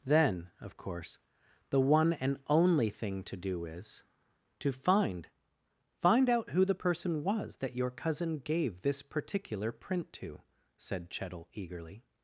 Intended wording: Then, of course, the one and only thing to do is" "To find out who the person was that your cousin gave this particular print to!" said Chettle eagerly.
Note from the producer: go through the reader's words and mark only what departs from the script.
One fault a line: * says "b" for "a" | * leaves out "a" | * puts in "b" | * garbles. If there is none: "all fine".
* puts in "find"